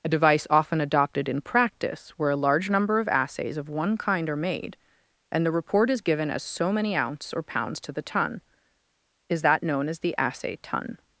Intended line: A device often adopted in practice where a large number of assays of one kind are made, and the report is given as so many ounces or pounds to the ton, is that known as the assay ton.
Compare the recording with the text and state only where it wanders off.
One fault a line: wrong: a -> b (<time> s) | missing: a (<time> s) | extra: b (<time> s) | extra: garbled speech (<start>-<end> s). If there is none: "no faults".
wrong: ounces -> ounce (7.0 s)